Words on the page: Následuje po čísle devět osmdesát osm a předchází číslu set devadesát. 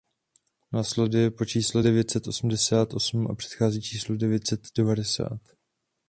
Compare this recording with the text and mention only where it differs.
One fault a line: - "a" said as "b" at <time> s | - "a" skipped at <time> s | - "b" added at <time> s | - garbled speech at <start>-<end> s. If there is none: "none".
- "set" added at 2.1 s
- "devět" added at 4.2 s